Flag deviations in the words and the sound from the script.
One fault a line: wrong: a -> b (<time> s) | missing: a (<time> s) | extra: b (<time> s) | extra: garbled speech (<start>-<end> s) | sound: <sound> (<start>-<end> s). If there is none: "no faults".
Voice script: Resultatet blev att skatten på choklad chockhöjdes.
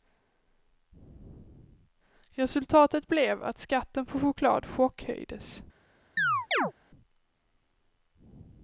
sound: chirp (6.2-6.7 s)